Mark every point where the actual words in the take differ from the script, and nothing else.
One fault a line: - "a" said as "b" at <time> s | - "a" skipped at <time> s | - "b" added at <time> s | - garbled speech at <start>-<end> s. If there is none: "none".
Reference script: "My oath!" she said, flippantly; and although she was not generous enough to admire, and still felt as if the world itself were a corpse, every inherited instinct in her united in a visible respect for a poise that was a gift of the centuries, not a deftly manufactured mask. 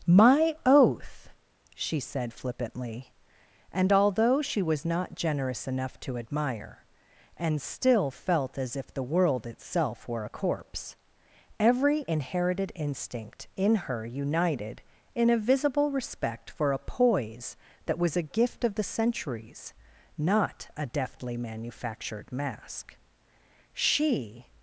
- "She" added at 23.7 s